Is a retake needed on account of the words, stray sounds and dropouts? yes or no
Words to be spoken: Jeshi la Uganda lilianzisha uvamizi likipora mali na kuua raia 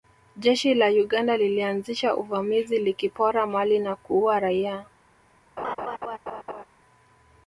yes